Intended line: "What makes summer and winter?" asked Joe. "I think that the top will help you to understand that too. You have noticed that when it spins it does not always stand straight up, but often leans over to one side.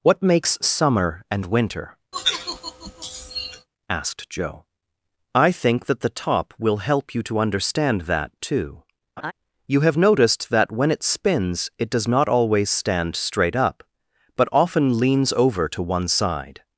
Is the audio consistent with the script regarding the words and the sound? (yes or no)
no